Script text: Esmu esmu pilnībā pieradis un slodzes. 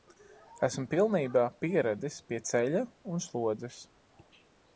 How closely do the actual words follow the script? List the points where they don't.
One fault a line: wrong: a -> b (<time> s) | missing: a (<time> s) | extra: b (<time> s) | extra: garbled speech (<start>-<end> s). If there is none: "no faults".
missing: esmu (0.8 s)
extra: pie ceļa (2.3 s)